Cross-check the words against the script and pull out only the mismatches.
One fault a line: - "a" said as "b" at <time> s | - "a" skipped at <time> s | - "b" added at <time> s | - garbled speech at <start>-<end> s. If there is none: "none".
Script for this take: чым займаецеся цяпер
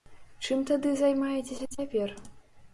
- "тады" added at 0.7 s